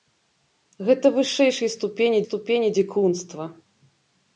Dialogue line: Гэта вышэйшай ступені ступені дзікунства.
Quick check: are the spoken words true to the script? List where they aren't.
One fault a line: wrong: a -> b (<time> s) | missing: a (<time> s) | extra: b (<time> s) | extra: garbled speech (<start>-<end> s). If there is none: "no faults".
no faults